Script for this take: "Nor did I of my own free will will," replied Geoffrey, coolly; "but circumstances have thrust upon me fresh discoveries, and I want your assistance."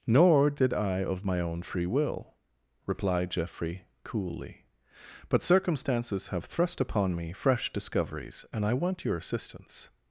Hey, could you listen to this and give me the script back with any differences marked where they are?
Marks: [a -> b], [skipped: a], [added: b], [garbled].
"Nor did I of my own free will [skipped: will,"] replied Geoffrey, coolly; "but circumstances have thrust upon me fresh discoveries, and I want your assistance."